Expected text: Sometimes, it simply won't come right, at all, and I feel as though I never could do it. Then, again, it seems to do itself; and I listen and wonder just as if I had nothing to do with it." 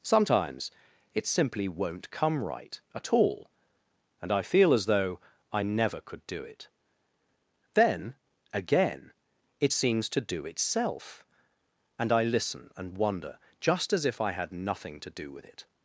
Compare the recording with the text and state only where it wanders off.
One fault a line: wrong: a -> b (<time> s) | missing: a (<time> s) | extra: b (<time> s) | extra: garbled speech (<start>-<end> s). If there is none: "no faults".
no faults